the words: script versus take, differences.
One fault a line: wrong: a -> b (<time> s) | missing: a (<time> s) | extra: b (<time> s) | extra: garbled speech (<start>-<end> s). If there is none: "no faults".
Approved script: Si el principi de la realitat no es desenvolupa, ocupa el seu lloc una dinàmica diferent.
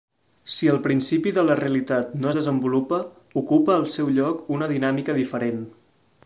no faults